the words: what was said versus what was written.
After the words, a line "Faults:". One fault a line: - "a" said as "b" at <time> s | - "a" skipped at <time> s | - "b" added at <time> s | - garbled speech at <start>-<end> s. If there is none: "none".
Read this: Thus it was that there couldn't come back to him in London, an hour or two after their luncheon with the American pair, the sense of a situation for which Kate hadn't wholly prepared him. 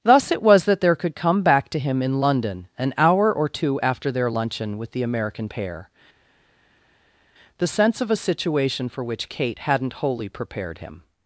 Thus it was that there could come back to him in London, an hour or two after their luncheon with the American pair, the sense of a situation for which Kate hadn't wholly prepared him.
Faults:
- "couldn't" said as "could" at 0.9 s